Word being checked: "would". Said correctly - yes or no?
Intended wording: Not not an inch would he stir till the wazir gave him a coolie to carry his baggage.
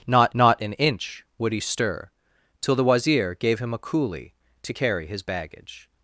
yes